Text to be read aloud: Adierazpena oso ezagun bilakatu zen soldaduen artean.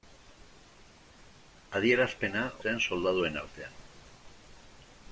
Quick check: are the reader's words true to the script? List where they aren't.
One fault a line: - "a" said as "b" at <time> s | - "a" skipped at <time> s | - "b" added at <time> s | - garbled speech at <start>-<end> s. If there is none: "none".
- "oso ezagun bilakatu" skipped at 2.4 s